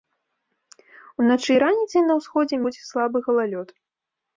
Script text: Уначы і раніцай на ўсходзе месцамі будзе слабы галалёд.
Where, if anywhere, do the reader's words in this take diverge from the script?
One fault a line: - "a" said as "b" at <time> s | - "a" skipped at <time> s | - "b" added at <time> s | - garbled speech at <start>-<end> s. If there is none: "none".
- "месцамі" skipped at 2.6 s